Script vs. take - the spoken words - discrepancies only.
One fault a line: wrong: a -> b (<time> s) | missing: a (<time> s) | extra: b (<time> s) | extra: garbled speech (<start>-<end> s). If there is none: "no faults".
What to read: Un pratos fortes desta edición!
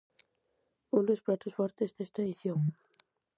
extra: dos (1.1 s)